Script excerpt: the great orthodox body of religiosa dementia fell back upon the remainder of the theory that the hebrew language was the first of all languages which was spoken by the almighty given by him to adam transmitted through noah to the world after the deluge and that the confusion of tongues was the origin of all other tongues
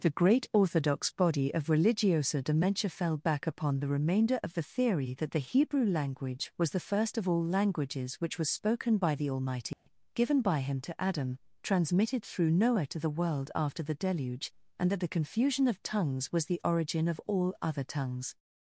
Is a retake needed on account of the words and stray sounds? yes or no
yes